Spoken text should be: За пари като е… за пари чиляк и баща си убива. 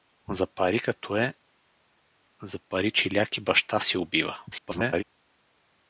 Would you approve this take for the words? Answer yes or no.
no